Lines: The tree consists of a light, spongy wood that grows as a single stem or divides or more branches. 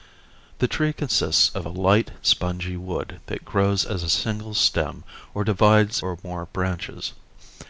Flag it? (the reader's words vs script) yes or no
no